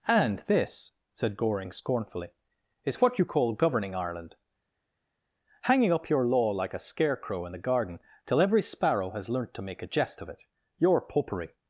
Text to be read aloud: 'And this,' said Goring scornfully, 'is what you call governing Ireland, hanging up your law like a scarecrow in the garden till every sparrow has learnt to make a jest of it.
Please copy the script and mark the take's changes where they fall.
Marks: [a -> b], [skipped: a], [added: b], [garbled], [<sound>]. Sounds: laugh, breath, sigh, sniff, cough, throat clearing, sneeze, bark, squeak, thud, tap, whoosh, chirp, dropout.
'And this,' said Goring scornfully, 'is what you call governing Ireland, hanging up your law like a scarecrow in the garden till every sparrow has learnt to make a jest of it. [added: Your Popery]